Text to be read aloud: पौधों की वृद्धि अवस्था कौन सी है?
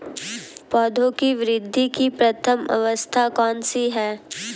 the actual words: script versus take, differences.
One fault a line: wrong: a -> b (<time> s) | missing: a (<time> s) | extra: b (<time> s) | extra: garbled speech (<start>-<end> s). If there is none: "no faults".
extra: की प्रथम (1.9 s)